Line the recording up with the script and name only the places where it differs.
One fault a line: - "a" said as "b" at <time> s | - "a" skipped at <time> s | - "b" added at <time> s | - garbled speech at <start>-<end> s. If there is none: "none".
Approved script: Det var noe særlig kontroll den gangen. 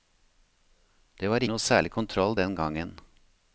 none